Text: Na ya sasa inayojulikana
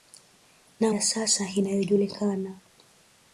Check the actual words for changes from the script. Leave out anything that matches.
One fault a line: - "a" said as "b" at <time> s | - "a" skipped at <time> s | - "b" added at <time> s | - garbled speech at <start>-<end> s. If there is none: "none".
none